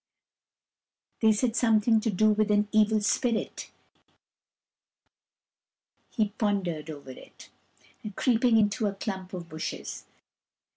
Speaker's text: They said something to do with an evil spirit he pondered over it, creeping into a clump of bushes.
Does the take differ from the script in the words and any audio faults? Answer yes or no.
no